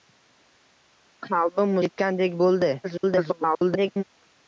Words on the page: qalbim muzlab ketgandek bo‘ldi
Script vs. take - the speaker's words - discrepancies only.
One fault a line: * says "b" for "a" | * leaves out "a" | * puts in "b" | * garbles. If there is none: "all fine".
* leaves out "muzlab"
* garbles